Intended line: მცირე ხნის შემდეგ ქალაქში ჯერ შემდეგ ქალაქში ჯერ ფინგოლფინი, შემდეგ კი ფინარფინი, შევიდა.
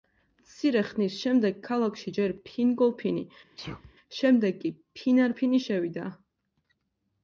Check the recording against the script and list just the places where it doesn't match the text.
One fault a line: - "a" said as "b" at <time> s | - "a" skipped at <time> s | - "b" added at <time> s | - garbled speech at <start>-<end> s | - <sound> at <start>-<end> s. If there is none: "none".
- "შემდეგ ქალაქში ჯერ" skipped at 2.3 s
- sneeze at 3.6-3.9 s